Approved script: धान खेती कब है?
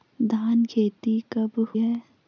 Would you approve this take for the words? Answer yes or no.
yes